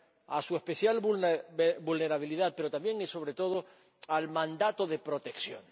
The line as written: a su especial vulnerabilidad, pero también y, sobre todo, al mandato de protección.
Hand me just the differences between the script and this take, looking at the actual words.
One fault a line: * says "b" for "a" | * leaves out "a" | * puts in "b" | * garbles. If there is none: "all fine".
all fine